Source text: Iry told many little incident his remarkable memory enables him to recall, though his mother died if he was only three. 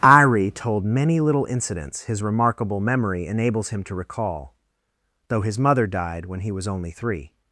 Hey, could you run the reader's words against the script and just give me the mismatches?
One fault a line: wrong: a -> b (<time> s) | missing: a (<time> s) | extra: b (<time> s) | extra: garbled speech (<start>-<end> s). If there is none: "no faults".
wrong: incident -> incidents (1.4 s)
wrong: if -> when (6.3 s)